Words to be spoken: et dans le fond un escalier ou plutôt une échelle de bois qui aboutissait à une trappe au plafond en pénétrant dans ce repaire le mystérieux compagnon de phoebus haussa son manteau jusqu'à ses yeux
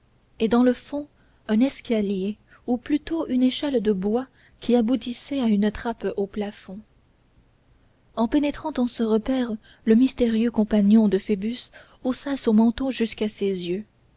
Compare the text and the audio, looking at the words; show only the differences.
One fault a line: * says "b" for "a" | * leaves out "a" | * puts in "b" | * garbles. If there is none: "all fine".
all fine